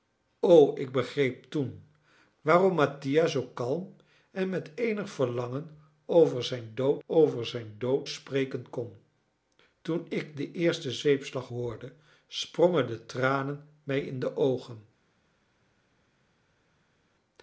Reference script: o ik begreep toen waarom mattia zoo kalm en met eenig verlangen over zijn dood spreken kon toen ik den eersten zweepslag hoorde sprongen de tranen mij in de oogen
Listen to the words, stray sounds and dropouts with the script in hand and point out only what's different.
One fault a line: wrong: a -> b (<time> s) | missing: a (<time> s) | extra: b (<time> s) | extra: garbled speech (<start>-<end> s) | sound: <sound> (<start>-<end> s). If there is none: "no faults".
extra: over zijn dood (7.1 s)